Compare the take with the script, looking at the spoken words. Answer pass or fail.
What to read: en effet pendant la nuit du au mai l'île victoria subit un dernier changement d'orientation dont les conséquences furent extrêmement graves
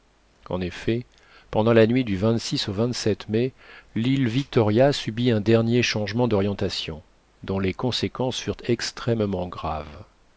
pass